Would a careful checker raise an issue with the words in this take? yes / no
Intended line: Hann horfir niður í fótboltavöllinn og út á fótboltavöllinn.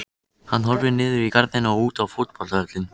yes